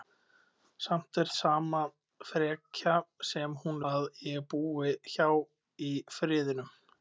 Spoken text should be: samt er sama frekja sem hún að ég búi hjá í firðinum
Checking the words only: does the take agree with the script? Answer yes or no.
yes